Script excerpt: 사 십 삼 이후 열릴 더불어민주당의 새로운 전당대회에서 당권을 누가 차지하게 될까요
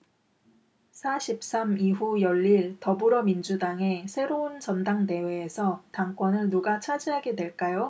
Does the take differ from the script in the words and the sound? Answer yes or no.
no